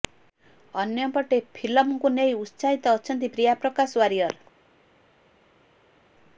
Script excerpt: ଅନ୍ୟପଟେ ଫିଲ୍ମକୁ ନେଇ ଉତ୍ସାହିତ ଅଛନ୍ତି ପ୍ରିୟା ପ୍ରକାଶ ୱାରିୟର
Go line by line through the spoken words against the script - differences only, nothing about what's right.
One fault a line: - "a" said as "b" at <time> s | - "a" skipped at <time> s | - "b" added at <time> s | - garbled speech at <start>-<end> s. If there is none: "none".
none